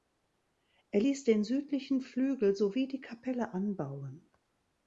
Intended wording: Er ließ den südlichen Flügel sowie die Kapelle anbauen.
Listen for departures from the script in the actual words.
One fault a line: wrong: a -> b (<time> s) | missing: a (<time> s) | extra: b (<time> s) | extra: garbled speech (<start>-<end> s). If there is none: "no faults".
no faults